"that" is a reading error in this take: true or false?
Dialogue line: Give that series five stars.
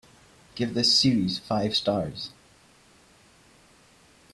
true